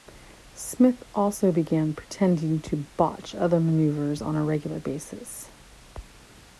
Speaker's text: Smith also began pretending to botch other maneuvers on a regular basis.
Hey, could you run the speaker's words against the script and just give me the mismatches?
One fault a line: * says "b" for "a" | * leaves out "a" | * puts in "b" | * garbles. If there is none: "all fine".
all fine